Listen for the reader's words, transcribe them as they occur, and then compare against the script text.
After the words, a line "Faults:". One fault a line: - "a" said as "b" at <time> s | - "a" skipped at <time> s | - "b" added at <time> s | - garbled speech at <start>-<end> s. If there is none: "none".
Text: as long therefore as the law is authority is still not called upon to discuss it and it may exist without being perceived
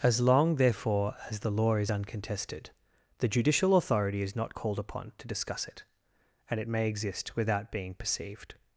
as long therefore as the law is uncontested the judicial authority is not called upon to discuss it and it may exist without being perceived
Faults:
- "uncontested the judicial" added at 1.9 s
- "still" skipped at 4.3 s